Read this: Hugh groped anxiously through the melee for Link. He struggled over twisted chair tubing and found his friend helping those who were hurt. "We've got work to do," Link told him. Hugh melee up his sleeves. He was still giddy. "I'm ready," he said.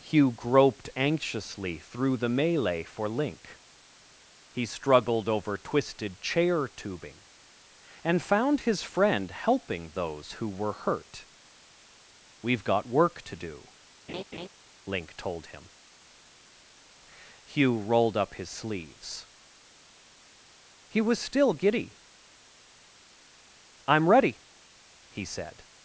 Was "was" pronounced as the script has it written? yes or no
yes